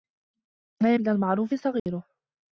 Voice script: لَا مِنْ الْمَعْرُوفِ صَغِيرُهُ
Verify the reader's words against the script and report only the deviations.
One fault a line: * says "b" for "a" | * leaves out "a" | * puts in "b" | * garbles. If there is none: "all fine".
all fine